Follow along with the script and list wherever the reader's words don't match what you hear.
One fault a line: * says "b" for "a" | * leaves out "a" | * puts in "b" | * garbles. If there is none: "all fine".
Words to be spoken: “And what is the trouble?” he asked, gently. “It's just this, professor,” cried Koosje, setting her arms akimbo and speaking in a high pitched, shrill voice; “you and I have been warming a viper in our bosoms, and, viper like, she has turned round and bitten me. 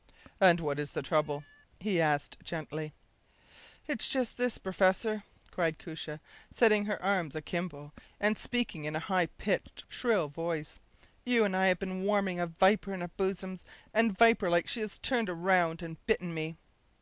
all fine